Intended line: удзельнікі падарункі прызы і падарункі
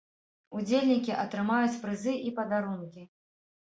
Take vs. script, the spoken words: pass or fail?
fail